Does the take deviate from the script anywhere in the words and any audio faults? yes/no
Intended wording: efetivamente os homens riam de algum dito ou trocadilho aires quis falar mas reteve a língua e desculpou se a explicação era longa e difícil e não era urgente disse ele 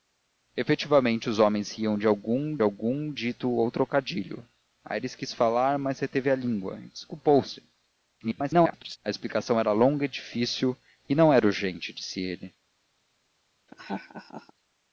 yes